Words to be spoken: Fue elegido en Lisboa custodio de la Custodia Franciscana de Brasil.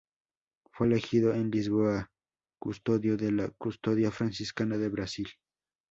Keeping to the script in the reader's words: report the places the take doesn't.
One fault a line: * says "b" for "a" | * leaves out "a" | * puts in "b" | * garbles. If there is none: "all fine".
all fine